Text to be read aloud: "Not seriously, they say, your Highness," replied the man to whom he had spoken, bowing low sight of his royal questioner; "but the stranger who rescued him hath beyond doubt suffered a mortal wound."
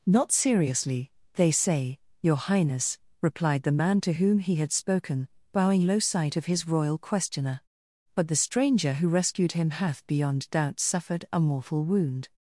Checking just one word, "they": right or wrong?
right